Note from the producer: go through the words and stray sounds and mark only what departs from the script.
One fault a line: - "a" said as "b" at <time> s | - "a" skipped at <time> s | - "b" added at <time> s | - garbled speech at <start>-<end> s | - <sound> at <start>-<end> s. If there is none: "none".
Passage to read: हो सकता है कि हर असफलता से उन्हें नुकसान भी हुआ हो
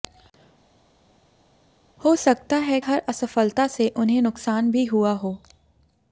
- "कि" skipped at 2.8 s